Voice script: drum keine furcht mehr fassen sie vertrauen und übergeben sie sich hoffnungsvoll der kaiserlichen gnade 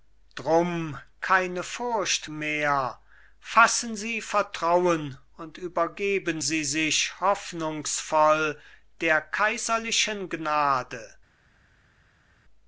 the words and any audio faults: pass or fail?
pass